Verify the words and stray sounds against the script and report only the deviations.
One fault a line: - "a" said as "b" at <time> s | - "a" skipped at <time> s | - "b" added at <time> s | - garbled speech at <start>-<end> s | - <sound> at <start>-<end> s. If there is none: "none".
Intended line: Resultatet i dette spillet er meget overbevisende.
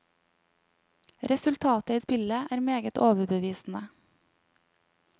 - "dette" skipped at 2.0 s